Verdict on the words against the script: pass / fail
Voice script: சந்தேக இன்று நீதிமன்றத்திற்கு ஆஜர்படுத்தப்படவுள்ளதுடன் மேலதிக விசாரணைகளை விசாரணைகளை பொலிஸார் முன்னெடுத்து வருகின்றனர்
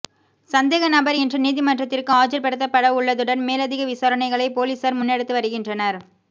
fail